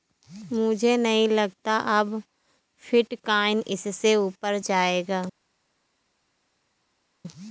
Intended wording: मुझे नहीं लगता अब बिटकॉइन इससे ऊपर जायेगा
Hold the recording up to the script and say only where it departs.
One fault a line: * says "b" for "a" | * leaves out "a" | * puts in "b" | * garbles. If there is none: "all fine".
all fine